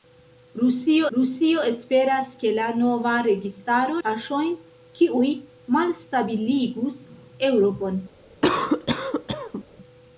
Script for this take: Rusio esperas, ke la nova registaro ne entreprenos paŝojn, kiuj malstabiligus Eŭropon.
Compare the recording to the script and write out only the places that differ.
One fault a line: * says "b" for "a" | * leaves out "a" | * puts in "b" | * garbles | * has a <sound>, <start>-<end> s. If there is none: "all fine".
* puts in "rusio"
* leaves out "ne entreprenos"
* has a cough, 8.4-9.7 s